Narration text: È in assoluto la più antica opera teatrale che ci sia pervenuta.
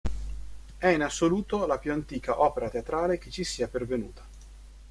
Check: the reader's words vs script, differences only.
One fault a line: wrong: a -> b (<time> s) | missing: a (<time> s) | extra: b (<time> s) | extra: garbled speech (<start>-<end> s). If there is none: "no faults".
no faults